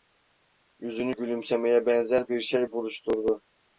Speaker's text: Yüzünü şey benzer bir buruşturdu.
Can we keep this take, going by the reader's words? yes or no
no